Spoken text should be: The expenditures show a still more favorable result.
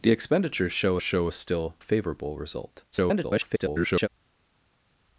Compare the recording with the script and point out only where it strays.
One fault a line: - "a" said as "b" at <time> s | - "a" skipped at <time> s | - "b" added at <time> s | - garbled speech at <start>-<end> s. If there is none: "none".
- "show" added at 1.0 s
- "more" skipped at 1.7 s
- garbled speech at 2.9-4.1 s